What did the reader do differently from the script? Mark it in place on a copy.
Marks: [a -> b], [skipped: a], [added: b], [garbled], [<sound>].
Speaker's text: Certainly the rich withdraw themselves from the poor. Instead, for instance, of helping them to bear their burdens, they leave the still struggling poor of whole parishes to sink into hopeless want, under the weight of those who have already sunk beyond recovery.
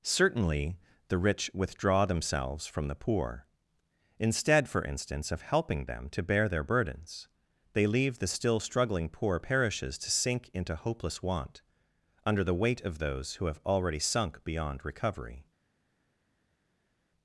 Certainly the rich withdraw themselves from the poor. Instead, for instance, of helping them to bear their burdens, they leave the still struggling poor [skipped: of whole] parishes to sink into hopeless want, under the weight of those who have already sunk beyond recovery.